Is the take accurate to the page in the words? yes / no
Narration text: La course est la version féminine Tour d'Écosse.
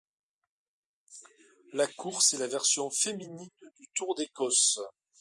no